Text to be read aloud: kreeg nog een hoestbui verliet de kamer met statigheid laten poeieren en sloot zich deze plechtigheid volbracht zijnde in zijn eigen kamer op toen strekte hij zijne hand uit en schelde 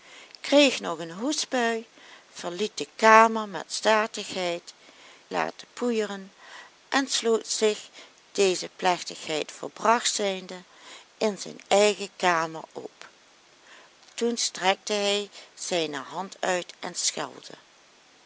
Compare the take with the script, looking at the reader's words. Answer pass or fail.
pass